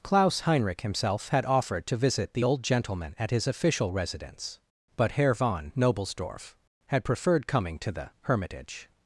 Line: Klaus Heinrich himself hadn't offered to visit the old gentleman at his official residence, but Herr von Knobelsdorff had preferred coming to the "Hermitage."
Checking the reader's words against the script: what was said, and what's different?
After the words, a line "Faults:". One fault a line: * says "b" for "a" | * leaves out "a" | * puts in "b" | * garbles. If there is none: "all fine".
Klaus Heinrich himself had offered to visit the old gentleman at his official residence, but Herr von Knobelsdorff had preferred coming to the "Hermitage."
Faults:
* says "had" for "hadn't"